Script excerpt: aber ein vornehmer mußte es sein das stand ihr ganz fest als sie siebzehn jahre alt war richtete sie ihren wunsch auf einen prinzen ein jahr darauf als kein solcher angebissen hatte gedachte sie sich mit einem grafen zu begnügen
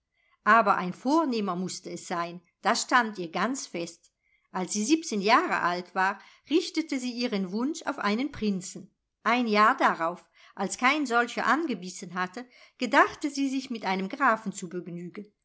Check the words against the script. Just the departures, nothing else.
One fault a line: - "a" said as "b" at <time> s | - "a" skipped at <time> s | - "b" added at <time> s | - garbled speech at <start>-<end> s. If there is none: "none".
none